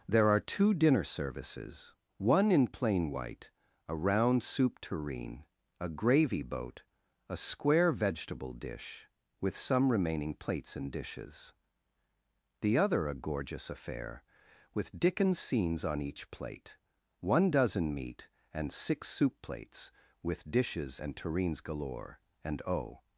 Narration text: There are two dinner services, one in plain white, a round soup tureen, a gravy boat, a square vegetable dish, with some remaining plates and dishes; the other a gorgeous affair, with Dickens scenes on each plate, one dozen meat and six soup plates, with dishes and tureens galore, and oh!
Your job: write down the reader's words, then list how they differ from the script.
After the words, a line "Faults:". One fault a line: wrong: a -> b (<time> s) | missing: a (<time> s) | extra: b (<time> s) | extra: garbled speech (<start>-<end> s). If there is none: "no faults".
There are two dinner services, one in plain white, a round soup tureen, a gravy boat, a square vegetable dish, with some remaining plates and dishes; the other a gorgeous affair, with Dickens scenes on each plate, one dozen meat and six soup plates, with dishes and tureens galore, and oh!
Faults:
no faults